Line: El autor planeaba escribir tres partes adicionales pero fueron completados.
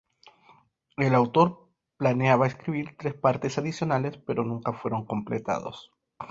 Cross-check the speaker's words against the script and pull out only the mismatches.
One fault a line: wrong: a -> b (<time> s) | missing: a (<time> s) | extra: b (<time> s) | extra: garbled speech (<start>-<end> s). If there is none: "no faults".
extra: nunca (4.4 s)